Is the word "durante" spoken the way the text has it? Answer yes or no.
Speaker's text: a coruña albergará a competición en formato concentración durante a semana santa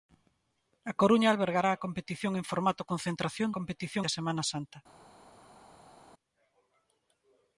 no